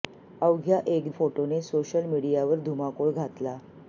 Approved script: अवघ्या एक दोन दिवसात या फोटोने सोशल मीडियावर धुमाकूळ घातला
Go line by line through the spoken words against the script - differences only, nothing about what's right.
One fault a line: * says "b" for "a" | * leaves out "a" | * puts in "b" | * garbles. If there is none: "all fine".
* leaves out "दोन दिवसात या"